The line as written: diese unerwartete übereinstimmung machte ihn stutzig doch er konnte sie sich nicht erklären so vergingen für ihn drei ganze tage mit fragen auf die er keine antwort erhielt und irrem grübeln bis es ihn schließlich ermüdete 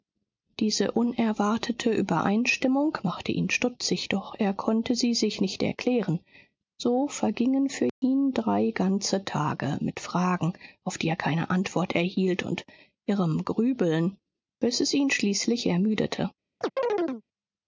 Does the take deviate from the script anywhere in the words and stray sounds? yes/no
yes